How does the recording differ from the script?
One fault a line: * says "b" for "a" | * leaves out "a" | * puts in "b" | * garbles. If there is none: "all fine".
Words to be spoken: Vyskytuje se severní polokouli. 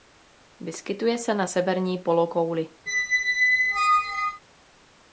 * puts in "na"